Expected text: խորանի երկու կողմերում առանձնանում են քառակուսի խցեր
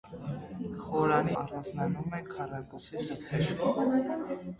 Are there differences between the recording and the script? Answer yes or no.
yes